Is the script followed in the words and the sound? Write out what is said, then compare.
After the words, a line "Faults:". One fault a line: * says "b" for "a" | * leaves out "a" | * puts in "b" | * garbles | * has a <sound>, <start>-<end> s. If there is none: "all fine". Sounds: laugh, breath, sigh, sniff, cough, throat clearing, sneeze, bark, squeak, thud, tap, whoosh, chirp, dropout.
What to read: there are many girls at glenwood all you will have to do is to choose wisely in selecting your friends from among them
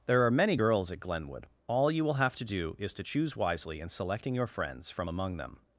there are many girls at glenwood all you will have to do is to choose wisely in selecting your friends from among them
Faults:
all fine